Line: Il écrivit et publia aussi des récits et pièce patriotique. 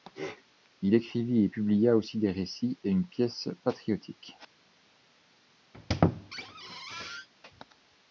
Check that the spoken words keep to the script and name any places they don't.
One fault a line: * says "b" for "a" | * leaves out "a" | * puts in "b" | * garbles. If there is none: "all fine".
* puts in "une"